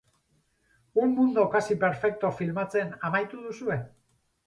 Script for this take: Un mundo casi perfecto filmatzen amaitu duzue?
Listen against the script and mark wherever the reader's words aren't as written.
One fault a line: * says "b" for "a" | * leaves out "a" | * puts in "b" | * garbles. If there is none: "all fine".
all fine